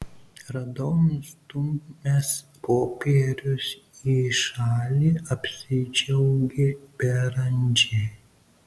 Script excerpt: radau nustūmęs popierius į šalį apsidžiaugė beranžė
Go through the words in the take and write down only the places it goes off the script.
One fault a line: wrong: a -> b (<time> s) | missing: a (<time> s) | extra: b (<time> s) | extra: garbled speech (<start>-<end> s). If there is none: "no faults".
no faults